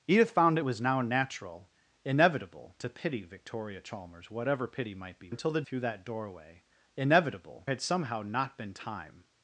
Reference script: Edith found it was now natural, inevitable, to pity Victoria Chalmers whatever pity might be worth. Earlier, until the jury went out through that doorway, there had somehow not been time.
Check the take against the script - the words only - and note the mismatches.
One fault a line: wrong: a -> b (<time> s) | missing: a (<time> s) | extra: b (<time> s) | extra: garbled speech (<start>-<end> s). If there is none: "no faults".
missing: worth Earlier (5.3 s)
missing: jury went out (5.6 s)
wrong: there -> inevitable (7.0 s)